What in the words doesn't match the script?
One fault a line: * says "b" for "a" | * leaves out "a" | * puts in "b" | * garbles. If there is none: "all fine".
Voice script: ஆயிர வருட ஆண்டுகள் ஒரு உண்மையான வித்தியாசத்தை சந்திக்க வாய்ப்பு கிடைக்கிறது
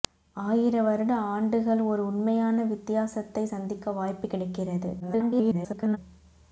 * garbles